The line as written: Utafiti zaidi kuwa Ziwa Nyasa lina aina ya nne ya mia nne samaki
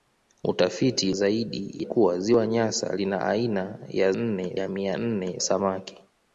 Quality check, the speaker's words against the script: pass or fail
pass